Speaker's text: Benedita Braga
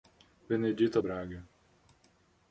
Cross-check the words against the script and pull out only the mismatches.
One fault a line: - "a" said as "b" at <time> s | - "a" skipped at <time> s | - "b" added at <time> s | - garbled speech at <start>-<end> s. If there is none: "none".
none